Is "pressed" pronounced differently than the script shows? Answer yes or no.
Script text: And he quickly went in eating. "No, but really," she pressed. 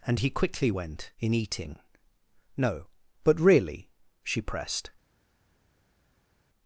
no